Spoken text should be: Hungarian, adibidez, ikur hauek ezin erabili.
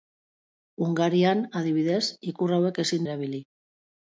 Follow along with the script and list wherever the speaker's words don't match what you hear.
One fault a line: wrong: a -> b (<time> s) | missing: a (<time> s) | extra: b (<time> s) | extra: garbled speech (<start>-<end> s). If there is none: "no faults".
no faults